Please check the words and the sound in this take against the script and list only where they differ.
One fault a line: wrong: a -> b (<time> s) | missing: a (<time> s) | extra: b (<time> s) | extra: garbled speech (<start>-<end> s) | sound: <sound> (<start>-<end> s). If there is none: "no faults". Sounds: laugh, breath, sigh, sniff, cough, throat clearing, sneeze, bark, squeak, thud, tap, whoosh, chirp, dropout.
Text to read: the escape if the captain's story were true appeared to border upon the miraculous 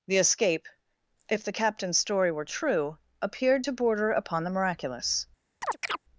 sound: chirp (5.6-6.0 s)